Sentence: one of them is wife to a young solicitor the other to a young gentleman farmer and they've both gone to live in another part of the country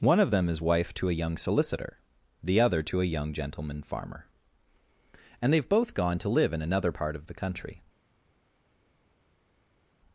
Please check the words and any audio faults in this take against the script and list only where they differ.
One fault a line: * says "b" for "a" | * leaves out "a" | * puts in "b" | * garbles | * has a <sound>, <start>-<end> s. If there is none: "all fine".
all fine